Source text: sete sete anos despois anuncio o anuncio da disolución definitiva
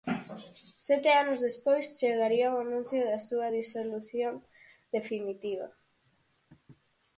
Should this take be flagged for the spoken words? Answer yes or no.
yes